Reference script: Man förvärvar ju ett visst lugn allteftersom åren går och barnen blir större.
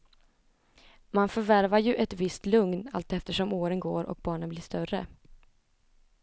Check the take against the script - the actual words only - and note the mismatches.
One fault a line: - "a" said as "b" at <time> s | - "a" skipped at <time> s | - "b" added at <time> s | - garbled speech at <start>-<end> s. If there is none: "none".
none